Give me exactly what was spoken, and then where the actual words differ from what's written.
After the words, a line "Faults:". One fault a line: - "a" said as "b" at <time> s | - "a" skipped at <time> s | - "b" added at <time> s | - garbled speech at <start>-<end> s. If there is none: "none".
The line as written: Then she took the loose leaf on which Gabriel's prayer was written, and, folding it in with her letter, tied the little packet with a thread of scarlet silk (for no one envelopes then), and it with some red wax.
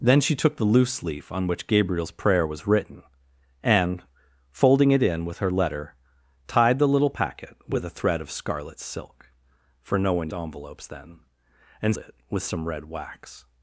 Then she took the loose leaf on which Gabriel's prayer was written, and, folding it in with her letter, tied the little packet with a thread of scarlet silk (for no one envelopes then), and it with some red wax.
Faults:
none